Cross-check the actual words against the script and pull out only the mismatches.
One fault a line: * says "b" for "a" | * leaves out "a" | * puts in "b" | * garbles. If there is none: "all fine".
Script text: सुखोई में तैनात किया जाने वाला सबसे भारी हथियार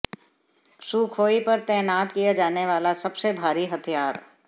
* says "पर" for "में"